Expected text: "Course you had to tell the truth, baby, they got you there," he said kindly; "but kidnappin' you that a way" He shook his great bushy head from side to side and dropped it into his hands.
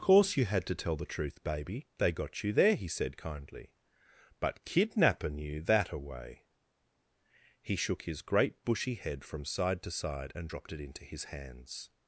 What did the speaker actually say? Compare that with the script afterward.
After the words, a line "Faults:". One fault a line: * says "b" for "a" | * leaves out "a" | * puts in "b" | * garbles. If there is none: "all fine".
"Course you had to tell the truth, baby, they got you there," he said kindly; "but kidnappin' you that a way" He shook his great bushy head from side to side and dropped it into his hands.
Faults:
all fine